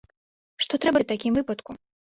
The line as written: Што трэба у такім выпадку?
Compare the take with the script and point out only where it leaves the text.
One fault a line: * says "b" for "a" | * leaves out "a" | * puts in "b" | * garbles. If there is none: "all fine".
all fine